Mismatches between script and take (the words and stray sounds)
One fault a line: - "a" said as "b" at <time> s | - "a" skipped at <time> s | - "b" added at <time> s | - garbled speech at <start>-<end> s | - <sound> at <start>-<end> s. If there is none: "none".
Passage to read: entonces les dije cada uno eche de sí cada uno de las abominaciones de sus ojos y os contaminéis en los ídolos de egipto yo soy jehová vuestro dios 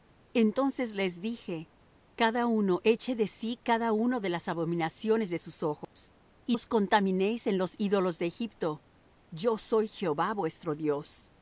- dropout at 5.8-6.0 s